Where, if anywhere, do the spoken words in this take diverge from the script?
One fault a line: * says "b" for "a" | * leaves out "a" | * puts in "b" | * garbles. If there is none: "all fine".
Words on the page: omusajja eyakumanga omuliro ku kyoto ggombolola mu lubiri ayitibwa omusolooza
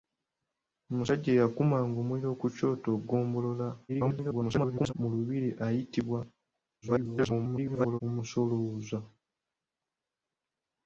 * garbles
* garbles